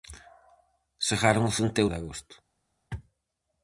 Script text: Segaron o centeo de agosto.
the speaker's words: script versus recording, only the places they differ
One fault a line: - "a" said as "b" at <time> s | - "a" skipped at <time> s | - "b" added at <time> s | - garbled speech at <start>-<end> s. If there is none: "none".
none